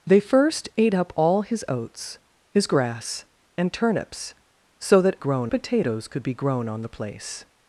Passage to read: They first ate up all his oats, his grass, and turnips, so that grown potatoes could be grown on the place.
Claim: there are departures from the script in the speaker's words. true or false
false